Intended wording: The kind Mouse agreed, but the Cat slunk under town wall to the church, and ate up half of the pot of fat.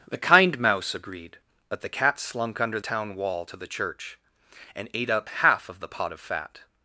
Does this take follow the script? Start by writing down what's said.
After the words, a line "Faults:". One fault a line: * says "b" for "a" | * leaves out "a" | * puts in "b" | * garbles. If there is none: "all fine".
The kind Mouse agreed, but the Cat slunk under town wall to the church, and ate up half of the pot of fat.
Faults:
all fine